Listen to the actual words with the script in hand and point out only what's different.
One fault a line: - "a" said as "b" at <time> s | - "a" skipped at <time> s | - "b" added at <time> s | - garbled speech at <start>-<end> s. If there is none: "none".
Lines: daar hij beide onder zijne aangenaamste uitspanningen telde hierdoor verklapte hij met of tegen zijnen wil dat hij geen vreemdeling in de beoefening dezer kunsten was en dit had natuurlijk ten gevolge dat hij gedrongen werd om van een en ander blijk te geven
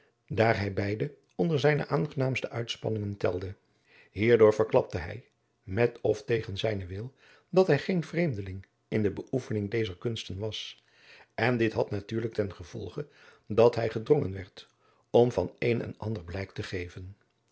none